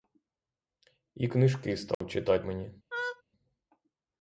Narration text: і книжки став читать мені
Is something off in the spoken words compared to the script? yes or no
no